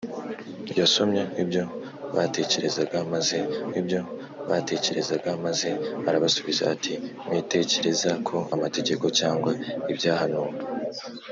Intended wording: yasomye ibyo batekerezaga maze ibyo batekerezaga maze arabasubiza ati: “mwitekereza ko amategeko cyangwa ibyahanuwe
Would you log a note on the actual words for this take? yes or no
no